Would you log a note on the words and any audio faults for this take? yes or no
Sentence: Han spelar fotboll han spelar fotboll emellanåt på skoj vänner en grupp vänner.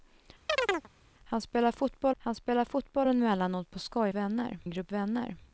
yes